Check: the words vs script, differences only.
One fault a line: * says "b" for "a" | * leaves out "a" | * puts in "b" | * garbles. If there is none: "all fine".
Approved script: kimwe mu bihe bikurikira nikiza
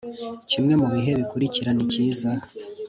all fine